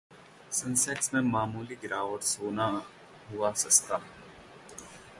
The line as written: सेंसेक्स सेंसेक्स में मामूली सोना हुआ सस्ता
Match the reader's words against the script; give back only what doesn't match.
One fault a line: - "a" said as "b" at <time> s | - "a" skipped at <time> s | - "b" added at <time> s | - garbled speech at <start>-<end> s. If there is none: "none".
- "सेंसेक्स" skipped at 1.1 s
- "गिरावट" added at 1.8 s